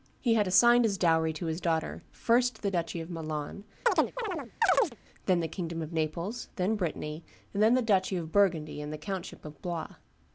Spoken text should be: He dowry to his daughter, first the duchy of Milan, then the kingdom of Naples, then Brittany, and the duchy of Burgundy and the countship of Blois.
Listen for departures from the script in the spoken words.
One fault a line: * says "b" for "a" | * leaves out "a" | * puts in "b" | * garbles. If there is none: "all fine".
* puts in "had assigned as"
* puts in "then"